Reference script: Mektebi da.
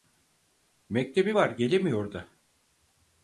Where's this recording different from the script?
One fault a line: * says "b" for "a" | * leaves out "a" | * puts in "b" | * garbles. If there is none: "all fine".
* puts in "var gelemiyor"